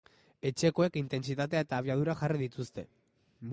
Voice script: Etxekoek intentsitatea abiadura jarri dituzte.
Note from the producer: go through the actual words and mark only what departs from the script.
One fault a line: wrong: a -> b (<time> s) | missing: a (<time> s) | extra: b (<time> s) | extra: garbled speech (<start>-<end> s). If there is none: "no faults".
extra: eta (1.7 s)